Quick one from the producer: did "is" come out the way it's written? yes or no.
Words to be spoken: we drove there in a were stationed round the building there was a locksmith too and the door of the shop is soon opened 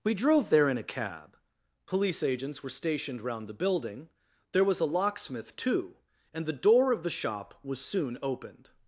no